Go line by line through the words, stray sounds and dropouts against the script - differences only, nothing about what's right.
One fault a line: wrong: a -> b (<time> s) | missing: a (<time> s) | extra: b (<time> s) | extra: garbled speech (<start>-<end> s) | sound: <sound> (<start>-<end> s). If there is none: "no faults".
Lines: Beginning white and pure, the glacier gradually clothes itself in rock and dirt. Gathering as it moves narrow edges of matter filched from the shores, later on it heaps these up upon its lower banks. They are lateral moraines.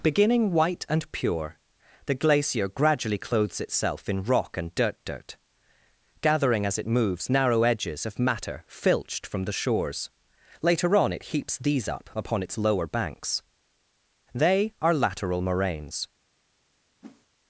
extra: dirt (5.0 s)
sound: whoosh (17.0-17.3 s)